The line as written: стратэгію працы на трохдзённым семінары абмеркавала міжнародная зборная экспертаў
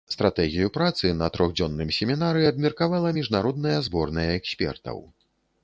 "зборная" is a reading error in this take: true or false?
false